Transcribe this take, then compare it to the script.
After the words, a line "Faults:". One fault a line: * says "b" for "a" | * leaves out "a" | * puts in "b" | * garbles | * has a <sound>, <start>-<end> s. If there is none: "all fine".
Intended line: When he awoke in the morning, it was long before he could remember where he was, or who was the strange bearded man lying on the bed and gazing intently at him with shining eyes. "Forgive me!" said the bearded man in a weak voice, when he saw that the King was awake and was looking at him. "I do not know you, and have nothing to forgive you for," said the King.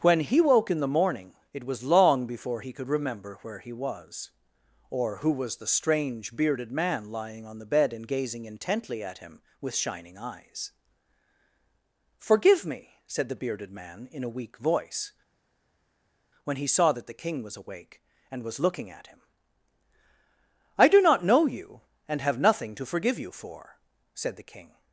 When he woke in the morning, it was long before he could remember where he was, or who was the strange bearded man lying on the bed and gazing intently at him with shining eyes. "Forgive me!" said the bearded man in a weak voice, when he saw that the King was awake and was looking at him. "I do not know you, and have nothing to forgive you for," said the King.
Faults:
* says "woke" for "awoke"